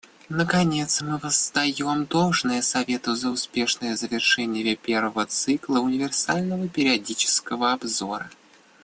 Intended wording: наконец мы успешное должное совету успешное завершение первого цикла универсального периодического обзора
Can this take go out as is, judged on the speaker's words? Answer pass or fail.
fail